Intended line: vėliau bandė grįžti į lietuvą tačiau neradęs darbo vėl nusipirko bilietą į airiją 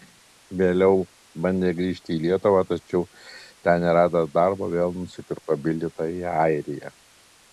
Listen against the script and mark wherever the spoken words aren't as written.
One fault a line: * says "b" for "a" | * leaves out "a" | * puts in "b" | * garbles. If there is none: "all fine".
* puts in "ten"